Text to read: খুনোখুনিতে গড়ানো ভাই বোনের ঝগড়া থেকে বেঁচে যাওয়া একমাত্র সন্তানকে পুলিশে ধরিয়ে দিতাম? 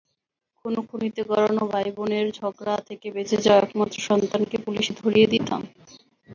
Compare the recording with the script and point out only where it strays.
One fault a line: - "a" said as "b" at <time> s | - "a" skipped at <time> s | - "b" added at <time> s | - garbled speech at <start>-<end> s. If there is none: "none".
none